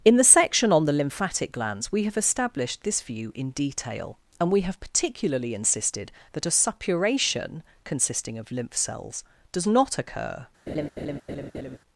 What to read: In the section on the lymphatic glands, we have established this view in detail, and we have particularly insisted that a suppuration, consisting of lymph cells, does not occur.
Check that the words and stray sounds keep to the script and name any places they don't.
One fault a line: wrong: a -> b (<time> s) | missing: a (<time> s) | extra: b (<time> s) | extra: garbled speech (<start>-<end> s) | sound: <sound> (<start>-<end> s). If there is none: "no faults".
sound: laugh (10.7-11.8 s)